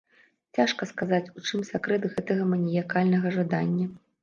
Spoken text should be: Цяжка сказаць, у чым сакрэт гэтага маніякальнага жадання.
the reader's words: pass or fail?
pass